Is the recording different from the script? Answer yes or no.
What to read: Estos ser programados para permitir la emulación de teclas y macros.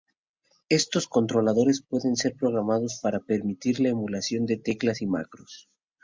yes